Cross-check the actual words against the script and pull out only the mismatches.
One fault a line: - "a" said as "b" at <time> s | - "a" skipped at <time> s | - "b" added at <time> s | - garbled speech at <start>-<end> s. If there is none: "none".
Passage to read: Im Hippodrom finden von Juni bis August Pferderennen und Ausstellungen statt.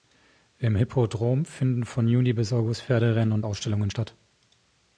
none